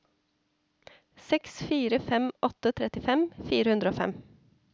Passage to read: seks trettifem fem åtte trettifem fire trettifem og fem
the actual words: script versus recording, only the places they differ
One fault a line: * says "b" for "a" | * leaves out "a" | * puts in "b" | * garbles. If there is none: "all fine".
* says "fire" for "trettifem"
* says "hundre" for "trettifem"